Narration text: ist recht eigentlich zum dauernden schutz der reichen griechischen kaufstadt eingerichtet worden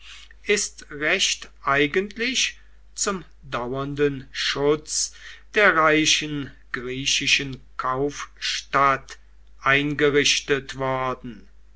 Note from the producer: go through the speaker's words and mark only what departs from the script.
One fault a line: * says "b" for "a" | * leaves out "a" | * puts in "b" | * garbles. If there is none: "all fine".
all fine